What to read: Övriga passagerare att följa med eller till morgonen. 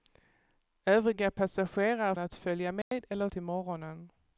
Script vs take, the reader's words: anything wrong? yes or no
no